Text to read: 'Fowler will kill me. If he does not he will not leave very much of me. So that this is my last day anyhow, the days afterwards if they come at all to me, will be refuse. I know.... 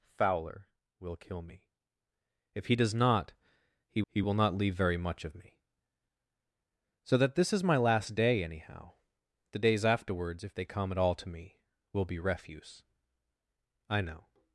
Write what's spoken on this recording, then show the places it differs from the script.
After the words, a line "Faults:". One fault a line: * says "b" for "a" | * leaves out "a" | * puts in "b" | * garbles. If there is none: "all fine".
'Fowler will kill me. If he does not he he will not leave very much of me. So that this is my last day anyhow, the days afterwards if they come at all to me, will be refuse. I know....
Faults:
* puts in "he"